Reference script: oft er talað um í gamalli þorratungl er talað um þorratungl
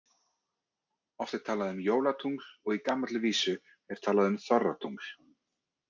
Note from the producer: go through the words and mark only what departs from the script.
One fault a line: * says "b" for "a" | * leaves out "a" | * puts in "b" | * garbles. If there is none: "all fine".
* puts in "jólatungl og"
* says "vísu" for "þorratungl"